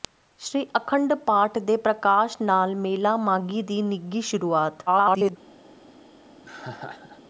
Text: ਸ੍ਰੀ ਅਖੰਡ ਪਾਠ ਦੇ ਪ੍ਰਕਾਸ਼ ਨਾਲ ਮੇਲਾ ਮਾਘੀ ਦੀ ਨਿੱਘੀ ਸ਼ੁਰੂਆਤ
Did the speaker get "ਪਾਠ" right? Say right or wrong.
right